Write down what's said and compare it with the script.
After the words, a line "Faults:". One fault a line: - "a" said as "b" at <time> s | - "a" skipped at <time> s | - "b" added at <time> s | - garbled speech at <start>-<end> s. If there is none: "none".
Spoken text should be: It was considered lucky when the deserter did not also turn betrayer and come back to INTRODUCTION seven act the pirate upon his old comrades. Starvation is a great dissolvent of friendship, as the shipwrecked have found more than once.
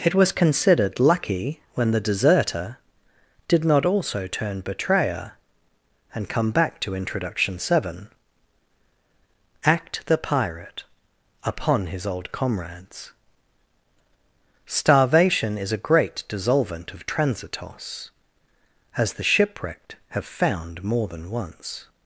It was considered lucky when the deserter did not also turn betrayer and come back to INTRODUCTION seven act the pirate upon his old comrades. Starvation is a great dissolvent of transitos, as the shipwrecked have found more than once.
Faults:
- "friendship" said as "transitos" at 17.1 s